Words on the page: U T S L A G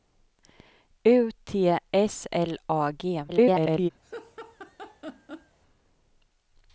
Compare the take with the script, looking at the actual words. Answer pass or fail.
fail